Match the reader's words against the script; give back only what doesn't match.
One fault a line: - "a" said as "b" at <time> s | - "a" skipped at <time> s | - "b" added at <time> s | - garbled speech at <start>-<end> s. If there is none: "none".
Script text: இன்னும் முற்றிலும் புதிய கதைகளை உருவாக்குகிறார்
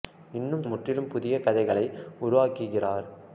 none